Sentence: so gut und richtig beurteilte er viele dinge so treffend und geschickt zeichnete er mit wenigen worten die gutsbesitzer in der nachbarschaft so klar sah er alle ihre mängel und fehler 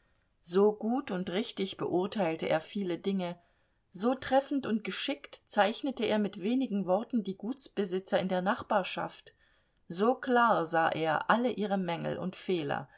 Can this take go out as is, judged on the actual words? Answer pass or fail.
pass